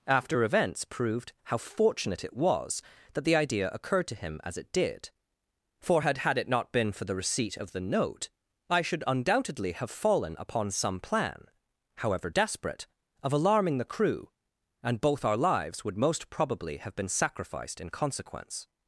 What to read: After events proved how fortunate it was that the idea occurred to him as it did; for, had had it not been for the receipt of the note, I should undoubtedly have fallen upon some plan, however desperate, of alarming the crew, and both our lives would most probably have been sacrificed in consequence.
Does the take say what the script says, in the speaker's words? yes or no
yes